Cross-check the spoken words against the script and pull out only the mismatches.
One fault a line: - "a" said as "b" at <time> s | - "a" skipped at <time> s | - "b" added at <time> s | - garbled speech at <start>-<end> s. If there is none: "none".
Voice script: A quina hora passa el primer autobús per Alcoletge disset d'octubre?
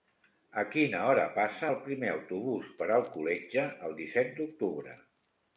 - "el" added at 3.9 s